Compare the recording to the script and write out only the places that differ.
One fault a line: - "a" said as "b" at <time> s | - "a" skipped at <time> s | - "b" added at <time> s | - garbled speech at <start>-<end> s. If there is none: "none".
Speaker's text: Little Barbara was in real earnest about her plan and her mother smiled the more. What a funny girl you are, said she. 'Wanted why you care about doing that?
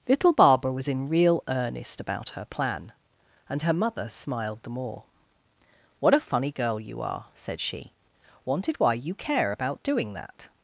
none